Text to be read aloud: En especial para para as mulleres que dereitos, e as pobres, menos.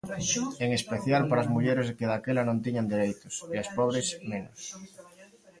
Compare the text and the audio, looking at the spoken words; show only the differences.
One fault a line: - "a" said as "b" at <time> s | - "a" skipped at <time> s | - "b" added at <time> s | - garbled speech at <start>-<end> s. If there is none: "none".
- "para" skipped at 1.4 s
- "daquela non tiñan" added at 2.1 s